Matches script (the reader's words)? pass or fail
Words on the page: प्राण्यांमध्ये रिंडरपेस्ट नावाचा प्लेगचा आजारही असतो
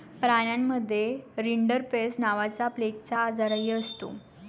pass